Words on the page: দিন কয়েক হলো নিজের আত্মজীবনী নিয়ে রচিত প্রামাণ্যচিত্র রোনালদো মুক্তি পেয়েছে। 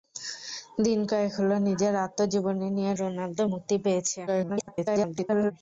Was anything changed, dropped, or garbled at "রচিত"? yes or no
yes